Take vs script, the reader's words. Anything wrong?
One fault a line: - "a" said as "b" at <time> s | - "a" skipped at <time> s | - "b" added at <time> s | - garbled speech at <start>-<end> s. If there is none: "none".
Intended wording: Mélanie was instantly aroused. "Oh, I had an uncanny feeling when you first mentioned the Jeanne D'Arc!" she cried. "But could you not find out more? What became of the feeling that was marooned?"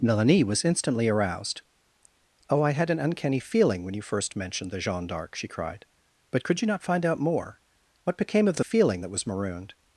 none